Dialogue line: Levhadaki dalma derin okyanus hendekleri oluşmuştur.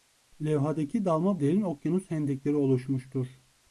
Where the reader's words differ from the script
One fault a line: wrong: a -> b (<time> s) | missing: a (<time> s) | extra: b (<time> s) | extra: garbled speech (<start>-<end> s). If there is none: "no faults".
no faults